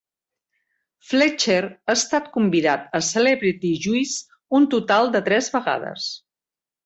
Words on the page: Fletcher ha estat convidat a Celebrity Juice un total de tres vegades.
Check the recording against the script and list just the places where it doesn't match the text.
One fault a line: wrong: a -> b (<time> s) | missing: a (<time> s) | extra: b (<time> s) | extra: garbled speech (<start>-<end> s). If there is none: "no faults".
no faults